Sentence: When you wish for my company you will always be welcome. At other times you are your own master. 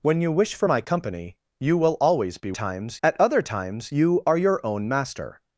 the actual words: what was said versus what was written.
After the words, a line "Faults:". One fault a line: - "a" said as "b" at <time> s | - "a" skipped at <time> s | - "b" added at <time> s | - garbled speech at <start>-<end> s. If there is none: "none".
When you wish for my company you will always be times. At other times you are your own master.
Faults:
- "welcome" said as "times" at 2.5 s